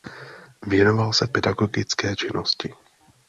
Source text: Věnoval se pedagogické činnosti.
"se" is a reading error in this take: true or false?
false